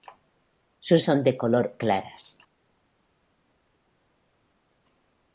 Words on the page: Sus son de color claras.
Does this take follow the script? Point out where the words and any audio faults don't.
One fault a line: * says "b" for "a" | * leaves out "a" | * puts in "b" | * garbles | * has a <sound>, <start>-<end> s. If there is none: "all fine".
all fine